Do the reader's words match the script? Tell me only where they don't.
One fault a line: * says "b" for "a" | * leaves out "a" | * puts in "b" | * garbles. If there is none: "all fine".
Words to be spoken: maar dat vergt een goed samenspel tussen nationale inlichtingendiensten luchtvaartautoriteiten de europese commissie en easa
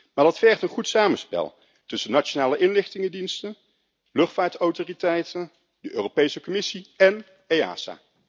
all fine